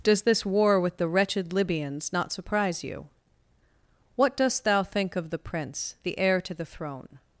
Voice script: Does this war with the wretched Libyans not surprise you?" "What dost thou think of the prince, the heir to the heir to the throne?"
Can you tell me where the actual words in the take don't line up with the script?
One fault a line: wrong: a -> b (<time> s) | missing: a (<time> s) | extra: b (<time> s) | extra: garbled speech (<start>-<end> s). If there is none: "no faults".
missing: heir to the (6.7 s)